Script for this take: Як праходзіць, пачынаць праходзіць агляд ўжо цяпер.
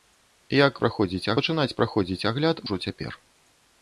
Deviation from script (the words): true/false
false